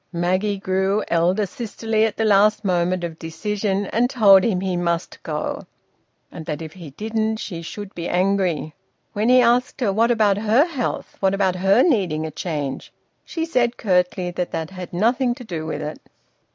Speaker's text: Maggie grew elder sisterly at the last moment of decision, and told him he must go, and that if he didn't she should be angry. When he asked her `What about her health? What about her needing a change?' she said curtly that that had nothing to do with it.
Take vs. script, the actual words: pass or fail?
pass